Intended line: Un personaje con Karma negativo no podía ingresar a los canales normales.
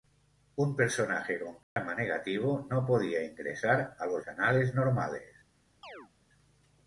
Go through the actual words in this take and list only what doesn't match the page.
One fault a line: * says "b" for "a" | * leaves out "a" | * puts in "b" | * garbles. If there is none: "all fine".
all fine